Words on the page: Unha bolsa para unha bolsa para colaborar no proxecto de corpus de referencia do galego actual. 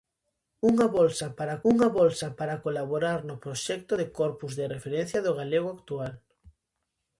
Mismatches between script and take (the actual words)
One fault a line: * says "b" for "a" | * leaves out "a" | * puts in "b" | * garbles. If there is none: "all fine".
all fine